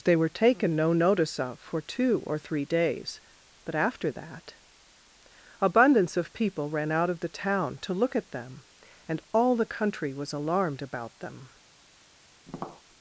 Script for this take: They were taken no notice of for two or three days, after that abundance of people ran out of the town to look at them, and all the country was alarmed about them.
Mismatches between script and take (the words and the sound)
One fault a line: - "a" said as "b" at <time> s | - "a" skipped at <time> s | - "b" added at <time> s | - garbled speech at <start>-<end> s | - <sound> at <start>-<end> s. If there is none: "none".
- "but" added at 3.6 s
- tap at 12.5-12.8 s